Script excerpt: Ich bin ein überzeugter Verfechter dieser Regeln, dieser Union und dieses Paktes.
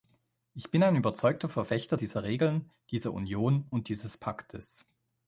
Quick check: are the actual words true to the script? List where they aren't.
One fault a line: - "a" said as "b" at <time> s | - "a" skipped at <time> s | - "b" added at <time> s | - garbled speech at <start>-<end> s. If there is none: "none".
none